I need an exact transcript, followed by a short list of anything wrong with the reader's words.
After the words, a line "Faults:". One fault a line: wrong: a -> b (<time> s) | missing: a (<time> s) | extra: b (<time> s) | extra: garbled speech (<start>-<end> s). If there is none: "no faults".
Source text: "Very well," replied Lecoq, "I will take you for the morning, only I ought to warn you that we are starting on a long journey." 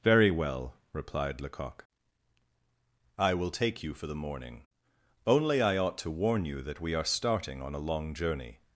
"Very well," replied Lecoq, "I will take you for the morning, only I ought to warn you that we are starting on a long journey."
Faults:
no faults